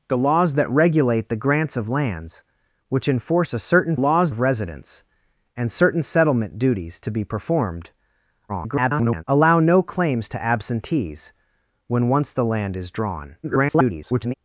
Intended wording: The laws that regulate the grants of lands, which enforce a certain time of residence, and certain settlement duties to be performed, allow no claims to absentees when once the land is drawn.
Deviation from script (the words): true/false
true